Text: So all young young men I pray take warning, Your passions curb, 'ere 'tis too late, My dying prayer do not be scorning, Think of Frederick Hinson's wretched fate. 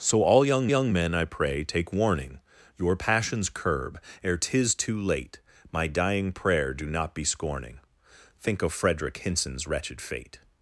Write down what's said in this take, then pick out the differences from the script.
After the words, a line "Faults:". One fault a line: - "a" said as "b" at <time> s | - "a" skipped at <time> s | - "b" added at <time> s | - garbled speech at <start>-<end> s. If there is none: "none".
So all young young men I pray take warning, Your passions curb, 'ere 'tis too late, My dying prayer do not be scorning, Think of Frederick Hinson's wretched fate.
Faults:
none